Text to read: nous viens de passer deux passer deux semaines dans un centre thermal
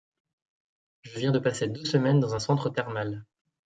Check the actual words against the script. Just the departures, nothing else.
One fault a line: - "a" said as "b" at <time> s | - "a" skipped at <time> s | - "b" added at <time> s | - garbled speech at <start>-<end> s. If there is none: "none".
- "nous" said as "je" at 1.0 s
- "passer deux" skipped at 1.8 s